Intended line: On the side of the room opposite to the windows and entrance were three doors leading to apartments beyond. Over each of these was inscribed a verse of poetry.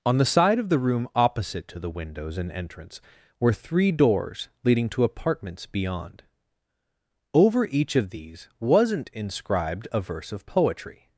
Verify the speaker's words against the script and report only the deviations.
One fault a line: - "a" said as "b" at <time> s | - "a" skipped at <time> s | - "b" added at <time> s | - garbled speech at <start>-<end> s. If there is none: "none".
- "was" said as "wasn't" at 8.6 s